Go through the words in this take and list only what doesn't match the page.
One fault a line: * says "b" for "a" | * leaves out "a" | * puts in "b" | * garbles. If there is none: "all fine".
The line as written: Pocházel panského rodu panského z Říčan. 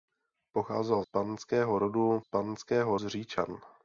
all fine